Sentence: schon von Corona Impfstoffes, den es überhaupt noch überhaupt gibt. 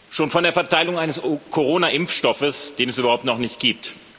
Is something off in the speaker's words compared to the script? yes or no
yes